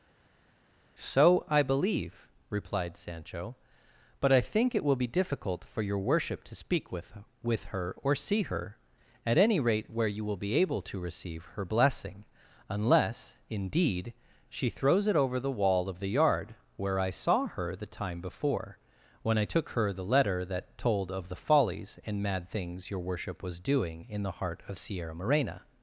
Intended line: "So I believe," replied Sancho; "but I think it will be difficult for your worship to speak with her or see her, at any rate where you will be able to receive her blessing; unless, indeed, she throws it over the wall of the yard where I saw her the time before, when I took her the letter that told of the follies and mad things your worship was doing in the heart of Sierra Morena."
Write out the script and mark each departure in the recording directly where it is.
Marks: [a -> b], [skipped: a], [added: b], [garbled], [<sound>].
"So I believe," replied Sancho; "but I think it will be difficult for your worship to speak with [added: with] her or see her, at any rate where you will be able to receive her blessing; unless, indeed, she throws it over the wall of the yard where I saw her the time before, when I took her the letter that told of the follies and mad things your worship was doing in the heart of Sierra Morena."